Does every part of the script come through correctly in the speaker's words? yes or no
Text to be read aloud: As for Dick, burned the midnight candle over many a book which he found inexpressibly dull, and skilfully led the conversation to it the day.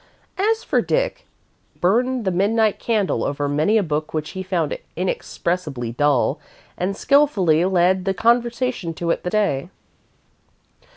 yes